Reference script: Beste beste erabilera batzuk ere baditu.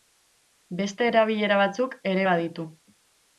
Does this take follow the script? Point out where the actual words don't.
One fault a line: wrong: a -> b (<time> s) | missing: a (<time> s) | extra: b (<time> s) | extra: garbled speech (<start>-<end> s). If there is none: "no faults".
missing: beste (1.1 s)